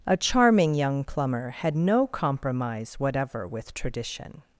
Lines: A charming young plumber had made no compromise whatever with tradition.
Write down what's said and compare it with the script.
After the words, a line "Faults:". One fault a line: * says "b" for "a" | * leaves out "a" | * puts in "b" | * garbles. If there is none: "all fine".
A charming young plumber had no compromise whatever with tradition.
Faults:
* leaves out "made"